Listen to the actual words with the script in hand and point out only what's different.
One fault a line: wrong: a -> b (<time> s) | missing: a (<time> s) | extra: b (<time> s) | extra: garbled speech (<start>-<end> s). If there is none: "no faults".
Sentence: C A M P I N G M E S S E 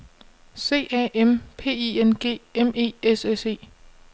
no faults